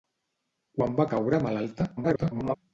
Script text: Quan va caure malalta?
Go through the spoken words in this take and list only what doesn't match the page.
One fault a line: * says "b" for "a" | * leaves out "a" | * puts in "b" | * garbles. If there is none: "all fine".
* garbles